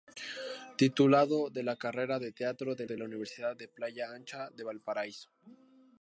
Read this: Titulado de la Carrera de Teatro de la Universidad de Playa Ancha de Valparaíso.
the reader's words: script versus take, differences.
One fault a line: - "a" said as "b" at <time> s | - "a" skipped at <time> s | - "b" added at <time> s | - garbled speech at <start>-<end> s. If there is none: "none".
- "de" added at 2.8 s